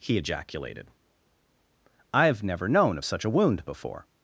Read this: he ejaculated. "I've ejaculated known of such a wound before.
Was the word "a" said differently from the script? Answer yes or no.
no